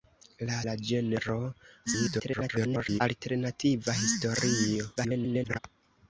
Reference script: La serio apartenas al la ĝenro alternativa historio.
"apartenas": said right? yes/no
no